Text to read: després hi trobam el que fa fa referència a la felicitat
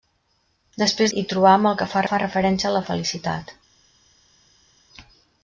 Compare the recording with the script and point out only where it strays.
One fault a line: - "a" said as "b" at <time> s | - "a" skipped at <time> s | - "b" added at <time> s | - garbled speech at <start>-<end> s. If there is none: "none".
none